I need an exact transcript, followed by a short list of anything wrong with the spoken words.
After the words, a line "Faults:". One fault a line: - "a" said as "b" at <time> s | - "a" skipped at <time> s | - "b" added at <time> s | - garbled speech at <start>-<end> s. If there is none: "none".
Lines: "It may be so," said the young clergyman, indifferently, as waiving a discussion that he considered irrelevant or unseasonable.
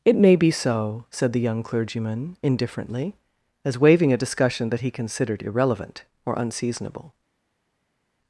"It may be so," said the young clergyman, indifferently, as waiving a discussion that he considered irrelevant or unseasonable.
Faults:
none